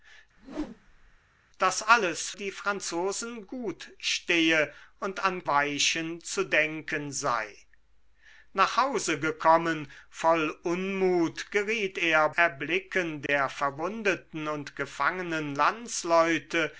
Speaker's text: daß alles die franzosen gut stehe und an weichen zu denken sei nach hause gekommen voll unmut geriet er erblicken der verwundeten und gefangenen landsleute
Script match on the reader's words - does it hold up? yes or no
yes